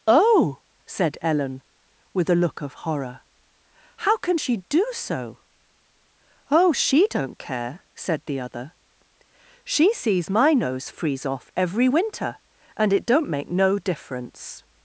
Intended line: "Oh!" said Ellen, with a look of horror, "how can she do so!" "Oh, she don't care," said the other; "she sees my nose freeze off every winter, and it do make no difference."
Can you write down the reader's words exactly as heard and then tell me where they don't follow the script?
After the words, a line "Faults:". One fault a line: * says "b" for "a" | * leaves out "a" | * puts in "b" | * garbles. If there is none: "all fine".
"Oh!" said Ellen, with a look of horror, "how can she do so!" "Oh, she don't care," said the other; "she sees my nose freeze off every winter, and it don't make no difference."
Faults:
* says "don't" for "do"